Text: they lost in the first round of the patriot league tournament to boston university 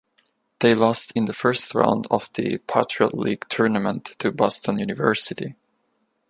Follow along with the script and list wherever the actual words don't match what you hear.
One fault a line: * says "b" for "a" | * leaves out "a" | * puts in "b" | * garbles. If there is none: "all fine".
all fine